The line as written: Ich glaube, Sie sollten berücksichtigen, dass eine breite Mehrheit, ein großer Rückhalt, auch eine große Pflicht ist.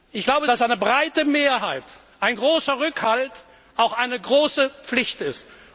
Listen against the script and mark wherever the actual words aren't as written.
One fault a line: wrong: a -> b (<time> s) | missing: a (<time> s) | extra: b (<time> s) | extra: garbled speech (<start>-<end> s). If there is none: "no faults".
missing: Sie sollten berücksichtigen (0.5 s)